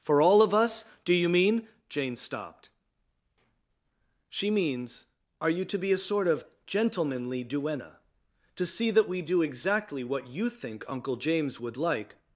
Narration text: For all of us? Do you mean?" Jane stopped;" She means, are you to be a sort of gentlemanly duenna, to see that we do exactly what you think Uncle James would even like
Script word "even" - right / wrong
wrong